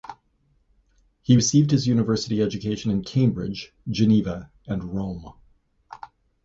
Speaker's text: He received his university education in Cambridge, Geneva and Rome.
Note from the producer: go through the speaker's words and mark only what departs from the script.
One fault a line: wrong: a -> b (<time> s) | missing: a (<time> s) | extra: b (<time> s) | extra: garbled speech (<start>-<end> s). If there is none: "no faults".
no faults